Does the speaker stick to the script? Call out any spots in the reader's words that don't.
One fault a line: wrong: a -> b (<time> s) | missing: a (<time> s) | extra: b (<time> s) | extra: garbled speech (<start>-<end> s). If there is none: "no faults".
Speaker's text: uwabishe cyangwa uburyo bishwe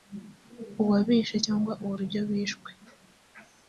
no faults